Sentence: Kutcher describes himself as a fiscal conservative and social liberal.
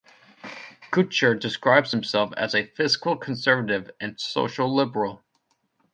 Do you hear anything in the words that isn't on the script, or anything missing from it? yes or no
no